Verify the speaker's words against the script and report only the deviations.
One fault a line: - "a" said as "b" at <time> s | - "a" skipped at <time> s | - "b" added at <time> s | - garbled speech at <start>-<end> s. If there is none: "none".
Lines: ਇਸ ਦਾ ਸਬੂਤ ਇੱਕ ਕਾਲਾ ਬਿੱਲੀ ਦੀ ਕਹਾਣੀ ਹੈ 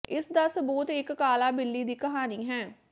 none